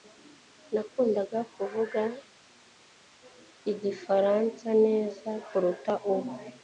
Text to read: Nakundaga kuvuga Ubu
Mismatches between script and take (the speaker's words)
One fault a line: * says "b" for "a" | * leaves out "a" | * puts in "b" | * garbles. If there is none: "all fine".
* puts in "Igifaransa neza kuruta"